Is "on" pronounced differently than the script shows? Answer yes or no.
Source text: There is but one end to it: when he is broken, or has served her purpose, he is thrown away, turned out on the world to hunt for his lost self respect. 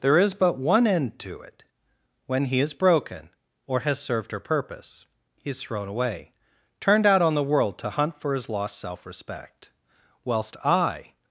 no